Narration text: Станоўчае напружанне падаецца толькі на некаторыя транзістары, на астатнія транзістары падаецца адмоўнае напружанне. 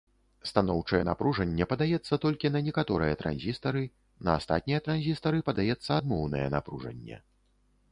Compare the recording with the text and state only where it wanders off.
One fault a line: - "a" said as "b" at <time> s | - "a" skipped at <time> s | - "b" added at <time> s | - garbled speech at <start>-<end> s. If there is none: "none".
none